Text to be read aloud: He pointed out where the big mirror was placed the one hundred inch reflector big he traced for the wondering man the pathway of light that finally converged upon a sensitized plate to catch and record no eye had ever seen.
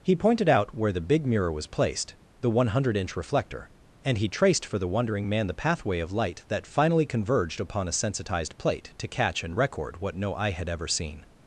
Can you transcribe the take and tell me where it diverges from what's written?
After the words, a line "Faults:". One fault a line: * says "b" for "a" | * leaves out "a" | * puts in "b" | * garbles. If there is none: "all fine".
He pointed out where the big mirror was placed the one hundred inch reflector and he traced for the wondering man the pathway of light that finally converged upon a sensitized plate to catch and record what no eye had ever seen.
Faults:
* says "and" for "big"
* puts in "what"